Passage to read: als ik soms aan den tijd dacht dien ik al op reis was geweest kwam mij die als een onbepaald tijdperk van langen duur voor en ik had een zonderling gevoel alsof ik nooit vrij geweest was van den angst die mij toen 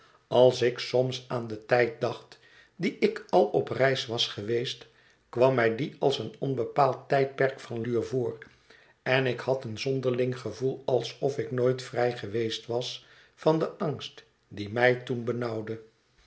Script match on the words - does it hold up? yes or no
no